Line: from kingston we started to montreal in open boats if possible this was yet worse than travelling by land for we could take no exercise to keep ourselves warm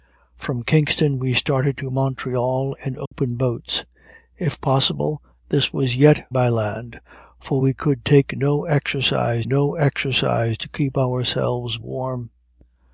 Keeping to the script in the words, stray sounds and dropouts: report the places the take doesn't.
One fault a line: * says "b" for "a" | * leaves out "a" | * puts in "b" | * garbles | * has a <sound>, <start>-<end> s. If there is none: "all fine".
* has a dropout, 3.1-3.1 s
* leaves out "worse than travelling"
* puts in "no exercise"